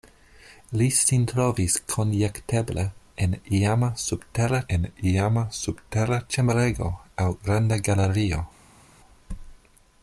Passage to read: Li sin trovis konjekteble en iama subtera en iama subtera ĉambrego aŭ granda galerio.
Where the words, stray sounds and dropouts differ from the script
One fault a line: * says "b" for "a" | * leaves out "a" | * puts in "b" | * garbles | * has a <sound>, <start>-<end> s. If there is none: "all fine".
all fine